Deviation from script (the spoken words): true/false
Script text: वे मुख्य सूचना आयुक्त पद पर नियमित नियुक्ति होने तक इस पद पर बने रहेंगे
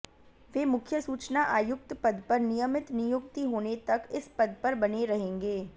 false